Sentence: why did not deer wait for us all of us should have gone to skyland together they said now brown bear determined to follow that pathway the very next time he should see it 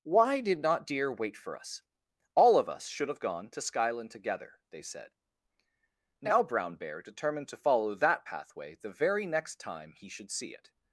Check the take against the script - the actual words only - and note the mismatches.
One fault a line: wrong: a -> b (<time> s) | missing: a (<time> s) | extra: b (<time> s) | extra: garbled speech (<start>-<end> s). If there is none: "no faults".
no faults